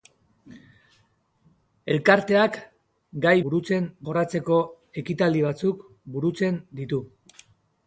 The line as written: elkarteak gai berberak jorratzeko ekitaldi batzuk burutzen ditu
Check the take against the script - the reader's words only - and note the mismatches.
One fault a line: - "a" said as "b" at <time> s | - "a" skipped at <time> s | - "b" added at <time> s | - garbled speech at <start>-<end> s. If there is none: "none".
- "berberak" said as "burutzen" at 3.5 s